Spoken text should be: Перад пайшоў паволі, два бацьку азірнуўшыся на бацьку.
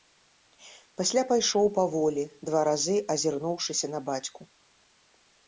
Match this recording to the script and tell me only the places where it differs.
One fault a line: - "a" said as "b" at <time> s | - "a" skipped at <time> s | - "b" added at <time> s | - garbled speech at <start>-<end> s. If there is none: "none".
- "Перад" said as "Пасля" at 1.0 s
- "бацьку" said as "разы" at 2.7 s